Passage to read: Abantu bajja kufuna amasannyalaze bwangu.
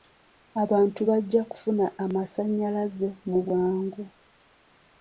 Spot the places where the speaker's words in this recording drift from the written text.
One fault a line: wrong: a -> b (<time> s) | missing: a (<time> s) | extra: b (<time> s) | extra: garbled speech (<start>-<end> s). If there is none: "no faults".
extra: mu (3.3 s)